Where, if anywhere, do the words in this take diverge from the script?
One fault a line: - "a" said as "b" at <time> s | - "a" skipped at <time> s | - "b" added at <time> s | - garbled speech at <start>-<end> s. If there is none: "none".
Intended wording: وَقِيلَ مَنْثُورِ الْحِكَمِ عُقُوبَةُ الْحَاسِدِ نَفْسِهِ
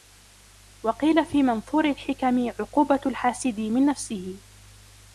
- "فِي" added at 1.2 s
- "مِنْ" added at 3.6 s